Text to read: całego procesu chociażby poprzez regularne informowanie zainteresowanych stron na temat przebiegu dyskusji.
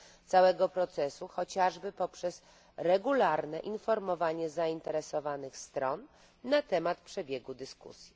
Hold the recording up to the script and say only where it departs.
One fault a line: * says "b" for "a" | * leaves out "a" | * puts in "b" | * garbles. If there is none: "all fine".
all fine